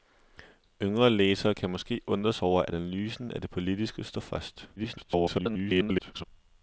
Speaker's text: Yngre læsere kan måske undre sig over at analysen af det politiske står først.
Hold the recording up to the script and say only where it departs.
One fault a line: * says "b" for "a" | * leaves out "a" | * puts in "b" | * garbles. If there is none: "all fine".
* garbles